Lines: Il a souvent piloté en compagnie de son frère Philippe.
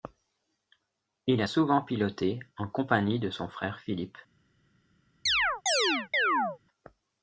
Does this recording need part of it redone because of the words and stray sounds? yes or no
yes